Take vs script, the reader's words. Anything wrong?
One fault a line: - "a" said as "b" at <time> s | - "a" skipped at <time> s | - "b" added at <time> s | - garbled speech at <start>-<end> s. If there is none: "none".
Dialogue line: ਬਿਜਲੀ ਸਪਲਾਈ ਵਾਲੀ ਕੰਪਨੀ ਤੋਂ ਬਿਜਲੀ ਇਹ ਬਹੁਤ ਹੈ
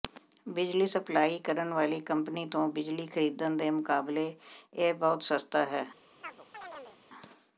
- "ਕਰਨ" added at 1.4 s
- "ਖਰੀਦਣ ਦੇ ਮੁਕਾਬਲੇ" added at 3.1 s
- "ਸਸਤਾ" added at 5.2 s